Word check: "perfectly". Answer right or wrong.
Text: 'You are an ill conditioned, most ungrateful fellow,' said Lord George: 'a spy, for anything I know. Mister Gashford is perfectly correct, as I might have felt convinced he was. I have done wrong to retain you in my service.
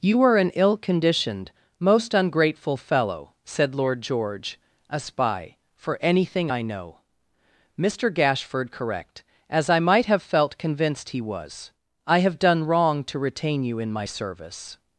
wrong